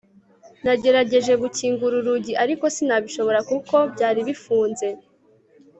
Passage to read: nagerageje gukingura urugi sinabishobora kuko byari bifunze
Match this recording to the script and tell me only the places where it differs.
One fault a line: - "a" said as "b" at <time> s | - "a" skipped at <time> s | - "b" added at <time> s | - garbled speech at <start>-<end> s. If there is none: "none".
- "ariko" added at 2.4 s